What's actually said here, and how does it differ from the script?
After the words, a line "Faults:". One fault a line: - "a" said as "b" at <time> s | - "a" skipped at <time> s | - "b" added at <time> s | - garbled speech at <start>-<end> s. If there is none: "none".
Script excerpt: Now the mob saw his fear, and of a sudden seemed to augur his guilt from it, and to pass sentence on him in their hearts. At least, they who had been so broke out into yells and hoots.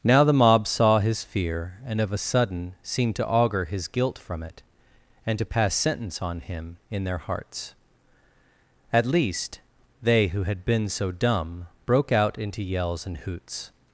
Now the mob saw his fear, and of a sudden seemed to augur his guilt from it, and to pass sentence on him in their hearts. At least, they who had been so dumb broke out into yells and hoots.
Faults:
- "dumb" added at 11.1 s